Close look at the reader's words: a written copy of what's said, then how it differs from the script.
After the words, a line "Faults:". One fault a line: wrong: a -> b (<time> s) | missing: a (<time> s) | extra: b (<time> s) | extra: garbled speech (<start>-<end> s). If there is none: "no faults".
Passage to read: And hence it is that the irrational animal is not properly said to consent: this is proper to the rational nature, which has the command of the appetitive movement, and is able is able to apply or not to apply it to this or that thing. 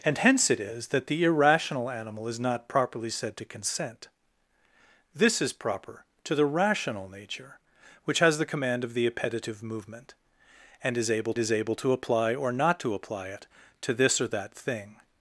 And hence it is that the irrational animal is not properly said to consent: this is proper to the rational nature, which has the command of the appetitive movement, and is able is able to apply or not to apply it to this or that thing.
Faults:
no faults